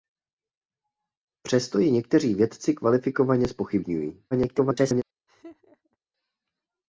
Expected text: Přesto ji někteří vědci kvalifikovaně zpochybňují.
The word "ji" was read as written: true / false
true